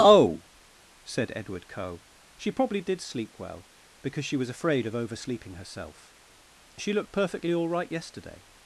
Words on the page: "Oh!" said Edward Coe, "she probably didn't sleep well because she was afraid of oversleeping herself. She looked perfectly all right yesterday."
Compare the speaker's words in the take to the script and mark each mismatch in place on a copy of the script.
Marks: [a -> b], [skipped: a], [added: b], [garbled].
"Oh!" said Edward Coe, "she probably [didn't -> did] sleep well because she was afraid of oversleeping herself. She looked perfectly all right yesterday."